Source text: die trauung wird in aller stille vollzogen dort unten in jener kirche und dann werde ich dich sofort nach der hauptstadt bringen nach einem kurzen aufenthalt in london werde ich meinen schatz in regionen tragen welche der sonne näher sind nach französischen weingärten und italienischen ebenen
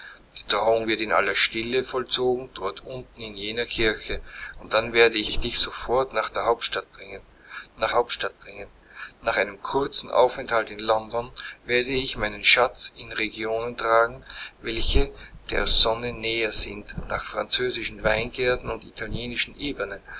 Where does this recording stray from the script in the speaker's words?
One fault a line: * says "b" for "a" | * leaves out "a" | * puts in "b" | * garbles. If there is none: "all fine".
* puts in "ich"
* puts in "hauptstadt bringen nach"